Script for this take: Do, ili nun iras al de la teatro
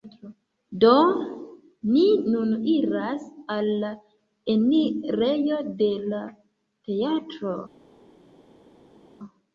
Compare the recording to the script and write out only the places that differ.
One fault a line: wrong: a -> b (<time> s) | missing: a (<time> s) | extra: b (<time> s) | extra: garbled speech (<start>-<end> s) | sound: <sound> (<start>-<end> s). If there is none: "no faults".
wrong: ili -> ni (1.9 s)
extra: la enirejo (3.9 s)